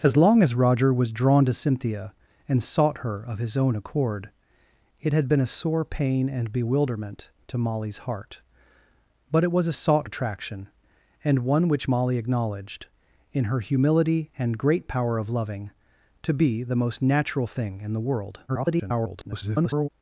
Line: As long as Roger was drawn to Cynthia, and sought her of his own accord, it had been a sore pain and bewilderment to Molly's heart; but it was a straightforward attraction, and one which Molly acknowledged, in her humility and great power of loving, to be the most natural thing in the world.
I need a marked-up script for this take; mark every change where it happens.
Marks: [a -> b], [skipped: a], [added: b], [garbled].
As long as Roger was drawn to Cynthia, and sought her of his own accord, it had been a sore pain and bewilderment to Molly's heart; but it was a [straightforward -> sought] attraction, and one which Molly acknowledged, in her humility and great power of loving, to be the most natural thing in the world. [garbled]